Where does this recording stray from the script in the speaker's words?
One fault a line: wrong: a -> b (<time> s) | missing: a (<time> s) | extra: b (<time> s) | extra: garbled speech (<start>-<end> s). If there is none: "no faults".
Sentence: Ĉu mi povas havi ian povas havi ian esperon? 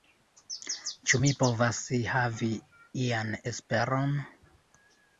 missing: povas havi ian (3.3 s)